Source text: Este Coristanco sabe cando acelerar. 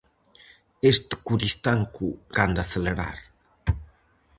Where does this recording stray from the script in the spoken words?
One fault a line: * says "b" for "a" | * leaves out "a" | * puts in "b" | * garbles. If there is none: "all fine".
* leaves out "sabe"